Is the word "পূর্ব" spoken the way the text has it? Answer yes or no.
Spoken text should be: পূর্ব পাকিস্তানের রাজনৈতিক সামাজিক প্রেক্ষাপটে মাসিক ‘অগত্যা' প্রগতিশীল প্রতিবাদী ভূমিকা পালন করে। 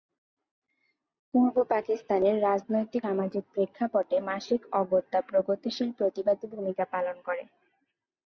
yes